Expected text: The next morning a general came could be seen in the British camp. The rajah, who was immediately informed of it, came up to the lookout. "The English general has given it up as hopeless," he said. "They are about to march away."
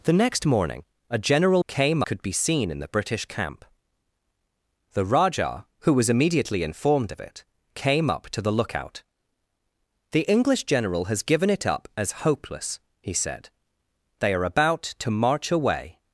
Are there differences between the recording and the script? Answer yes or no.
no